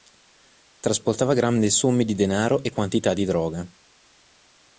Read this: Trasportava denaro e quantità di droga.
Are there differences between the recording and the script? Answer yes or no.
yes